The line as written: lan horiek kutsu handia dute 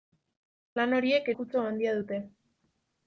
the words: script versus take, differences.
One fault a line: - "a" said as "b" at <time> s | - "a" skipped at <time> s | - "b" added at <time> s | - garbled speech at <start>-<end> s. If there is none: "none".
none